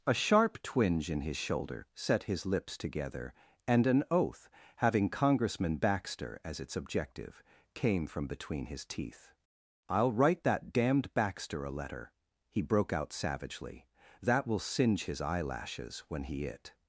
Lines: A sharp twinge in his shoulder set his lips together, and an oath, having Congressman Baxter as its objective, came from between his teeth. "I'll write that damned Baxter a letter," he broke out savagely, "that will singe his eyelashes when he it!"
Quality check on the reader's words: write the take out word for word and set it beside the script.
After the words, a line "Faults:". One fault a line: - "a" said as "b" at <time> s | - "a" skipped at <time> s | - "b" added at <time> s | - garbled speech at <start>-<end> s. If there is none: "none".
A sharp twinge in his shoulder set his lips together, and an oath, having Congressman Baxter as its objective, came from between his teeth. "I'll write that damned Baxter a letter," he broke out savagely, "that will singe his eyelashes when he it!"
Faults:
none